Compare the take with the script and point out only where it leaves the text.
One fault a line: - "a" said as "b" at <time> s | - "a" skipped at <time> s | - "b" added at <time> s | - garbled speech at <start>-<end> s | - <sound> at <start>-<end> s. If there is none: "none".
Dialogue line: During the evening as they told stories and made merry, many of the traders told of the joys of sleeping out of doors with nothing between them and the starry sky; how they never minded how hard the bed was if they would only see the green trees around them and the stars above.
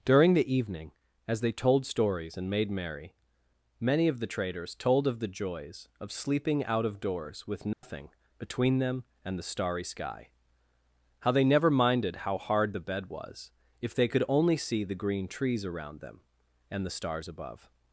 - dropout at 7.7-7.8 s
- "would" said as "could" at 14.1 s